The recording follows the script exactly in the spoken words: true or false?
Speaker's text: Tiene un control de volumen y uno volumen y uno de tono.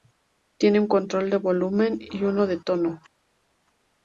false